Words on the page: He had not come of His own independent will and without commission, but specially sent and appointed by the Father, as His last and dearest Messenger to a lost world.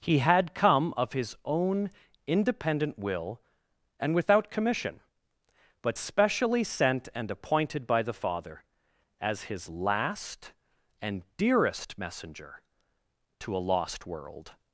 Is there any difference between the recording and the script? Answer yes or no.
yes